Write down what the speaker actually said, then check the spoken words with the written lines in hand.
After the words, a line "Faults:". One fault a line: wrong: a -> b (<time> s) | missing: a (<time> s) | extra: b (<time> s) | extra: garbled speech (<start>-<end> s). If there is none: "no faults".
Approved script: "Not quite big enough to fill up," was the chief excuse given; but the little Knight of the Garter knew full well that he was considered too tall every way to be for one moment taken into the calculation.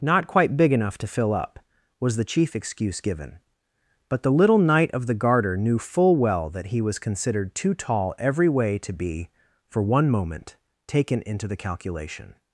"Not quite big enough to fill up," was the chief excuse given; but the little Knight of the Garter knew full well that he was considered too tall every way to be for one moment taken into the calculation.
Faults:
no faults